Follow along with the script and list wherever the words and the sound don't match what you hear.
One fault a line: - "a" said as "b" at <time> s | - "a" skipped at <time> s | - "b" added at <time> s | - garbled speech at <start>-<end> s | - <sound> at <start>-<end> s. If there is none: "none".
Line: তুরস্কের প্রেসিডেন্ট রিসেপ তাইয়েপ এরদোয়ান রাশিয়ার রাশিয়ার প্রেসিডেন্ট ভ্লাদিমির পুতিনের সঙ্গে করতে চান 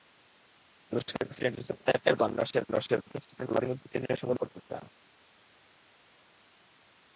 none